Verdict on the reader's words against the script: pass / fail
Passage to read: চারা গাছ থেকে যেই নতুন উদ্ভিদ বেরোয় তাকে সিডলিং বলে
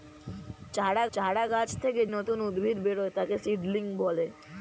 fail